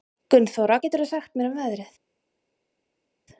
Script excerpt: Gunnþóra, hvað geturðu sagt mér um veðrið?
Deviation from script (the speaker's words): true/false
true